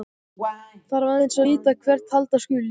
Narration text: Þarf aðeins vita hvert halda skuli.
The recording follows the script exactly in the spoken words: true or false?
true